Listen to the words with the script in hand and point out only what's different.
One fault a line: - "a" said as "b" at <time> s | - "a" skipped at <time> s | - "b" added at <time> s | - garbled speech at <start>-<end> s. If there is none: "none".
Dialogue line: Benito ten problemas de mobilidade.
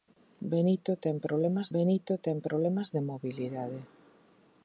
- "benito ten problemas" added at 1.8 s